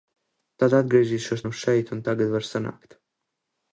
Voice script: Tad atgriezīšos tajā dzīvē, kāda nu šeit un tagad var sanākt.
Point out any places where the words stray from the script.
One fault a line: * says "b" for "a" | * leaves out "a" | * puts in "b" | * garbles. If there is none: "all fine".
* leaves out "tajā dzīvē kāda"